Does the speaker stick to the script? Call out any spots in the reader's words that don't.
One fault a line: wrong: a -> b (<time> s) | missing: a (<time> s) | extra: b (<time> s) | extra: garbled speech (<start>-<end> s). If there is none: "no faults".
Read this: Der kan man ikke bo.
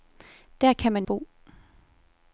missing: ikke (1.1 s)